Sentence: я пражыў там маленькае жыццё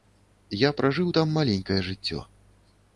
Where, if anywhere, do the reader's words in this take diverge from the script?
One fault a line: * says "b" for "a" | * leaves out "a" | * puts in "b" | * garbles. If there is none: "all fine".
all fine